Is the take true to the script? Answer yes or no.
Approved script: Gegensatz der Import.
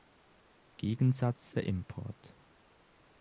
yes